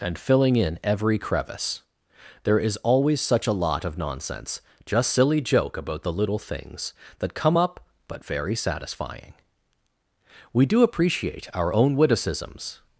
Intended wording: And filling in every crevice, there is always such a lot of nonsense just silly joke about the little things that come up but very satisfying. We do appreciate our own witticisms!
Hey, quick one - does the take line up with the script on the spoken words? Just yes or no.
yes